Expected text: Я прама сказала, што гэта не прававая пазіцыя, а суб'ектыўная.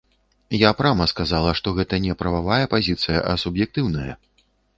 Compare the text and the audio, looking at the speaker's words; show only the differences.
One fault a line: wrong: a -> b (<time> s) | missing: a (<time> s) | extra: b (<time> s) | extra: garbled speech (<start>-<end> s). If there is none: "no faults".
no faults